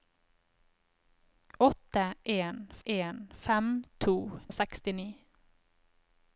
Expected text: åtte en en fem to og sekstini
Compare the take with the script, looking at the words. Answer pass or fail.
pass